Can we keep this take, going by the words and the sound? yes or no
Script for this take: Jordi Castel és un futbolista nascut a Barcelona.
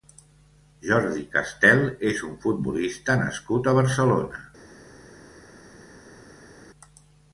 yes